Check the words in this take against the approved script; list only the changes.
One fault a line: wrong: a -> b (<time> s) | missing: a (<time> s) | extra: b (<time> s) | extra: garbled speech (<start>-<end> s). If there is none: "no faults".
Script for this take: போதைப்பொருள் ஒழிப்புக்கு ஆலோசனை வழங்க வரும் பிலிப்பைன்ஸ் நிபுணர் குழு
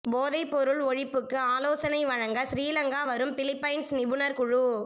extra: சிறிலங்கா (2.5 s)